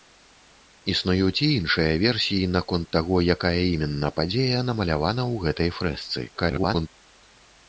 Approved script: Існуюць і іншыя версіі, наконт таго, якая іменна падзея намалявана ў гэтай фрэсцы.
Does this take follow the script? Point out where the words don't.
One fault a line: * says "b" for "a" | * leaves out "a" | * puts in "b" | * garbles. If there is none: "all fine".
* garbles